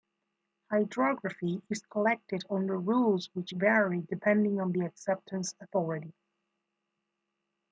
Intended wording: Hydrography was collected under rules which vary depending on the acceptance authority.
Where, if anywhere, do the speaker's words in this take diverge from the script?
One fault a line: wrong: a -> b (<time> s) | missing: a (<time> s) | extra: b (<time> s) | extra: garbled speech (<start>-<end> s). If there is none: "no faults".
wrong: was -> is (1.7 s)